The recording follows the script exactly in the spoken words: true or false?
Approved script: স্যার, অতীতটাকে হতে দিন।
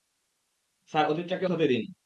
true